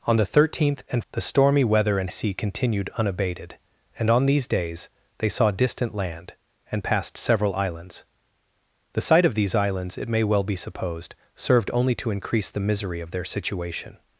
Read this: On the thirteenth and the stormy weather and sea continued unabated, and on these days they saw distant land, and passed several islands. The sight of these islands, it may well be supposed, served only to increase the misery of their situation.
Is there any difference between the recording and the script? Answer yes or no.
no